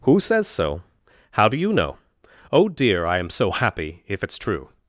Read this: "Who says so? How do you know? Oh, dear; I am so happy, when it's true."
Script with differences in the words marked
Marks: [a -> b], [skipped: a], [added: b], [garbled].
"Who says so? How do you know? Oh, dear; I am so happy, [when -> if] it's true."